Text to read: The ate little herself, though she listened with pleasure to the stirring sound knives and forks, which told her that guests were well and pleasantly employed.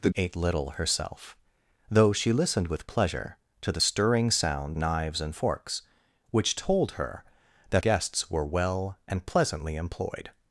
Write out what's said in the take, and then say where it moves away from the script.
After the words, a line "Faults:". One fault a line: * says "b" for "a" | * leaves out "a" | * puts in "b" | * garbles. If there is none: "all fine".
The ate little herself, though she listened with pleasure to the stirring sound knives and forks, which told her that guests were well and pleasantly employed.
Faults:
all fine